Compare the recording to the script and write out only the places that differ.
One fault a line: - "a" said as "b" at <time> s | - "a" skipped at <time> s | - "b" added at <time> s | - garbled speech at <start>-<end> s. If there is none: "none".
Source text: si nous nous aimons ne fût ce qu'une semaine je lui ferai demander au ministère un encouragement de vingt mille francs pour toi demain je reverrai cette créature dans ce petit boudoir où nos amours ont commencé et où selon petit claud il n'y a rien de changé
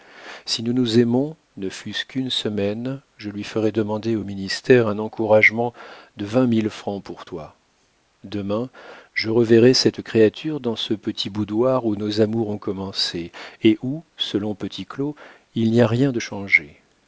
none